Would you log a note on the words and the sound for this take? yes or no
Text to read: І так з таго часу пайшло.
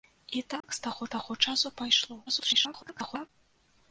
yes